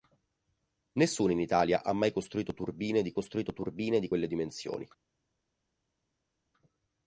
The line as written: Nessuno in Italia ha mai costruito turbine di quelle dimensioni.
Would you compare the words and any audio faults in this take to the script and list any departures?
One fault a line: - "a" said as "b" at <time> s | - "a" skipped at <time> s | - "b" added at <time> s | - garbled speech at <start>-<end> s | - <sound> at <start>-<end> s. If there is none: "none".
- "costruito turbine di" added at 3.1 s